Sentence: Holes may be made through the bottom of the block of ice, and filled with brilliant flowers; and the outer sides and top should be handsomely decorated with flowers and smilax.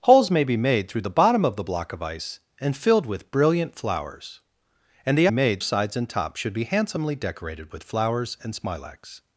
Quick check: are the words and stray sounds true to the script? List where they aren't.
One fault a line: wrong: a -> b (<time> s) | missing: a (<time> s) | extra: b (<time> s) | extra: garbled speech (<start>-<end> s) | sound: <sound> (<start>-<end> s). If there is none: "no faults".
wrong: outer -> made (5.3 s)